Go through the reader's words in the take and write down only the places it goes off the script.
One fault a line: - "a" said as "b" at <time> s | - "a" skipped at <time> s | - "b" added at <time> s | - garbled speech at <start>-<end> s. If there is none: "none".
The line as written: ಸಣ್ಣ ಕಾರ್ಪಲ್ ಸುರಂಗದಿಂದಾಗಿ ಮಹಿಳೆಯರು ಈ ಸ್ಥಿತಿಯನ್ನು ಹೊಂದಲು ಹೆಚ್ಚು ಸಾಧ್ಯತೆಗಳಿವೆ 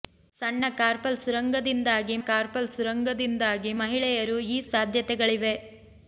- "ಕಾರ್ಪಲ್ ಸುರಂಗದಿಂದಾಗಿ" added at 2.3 s
- "ಸ್ಥಿತಿಯನ್ನು ಹೊಂದಲು ಹೆಚ್ಚು" skipped at 4.7 s